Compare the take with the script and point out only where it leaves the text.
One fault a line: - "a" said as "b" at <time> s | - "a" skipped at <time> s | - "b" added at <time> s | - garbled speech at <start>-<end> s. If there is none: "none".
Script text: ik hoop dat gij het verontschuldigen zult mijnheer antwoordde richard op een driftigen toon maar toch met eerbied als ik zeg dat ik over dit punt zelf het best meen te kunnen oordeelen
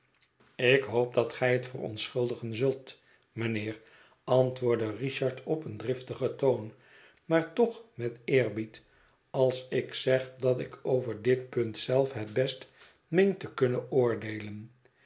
none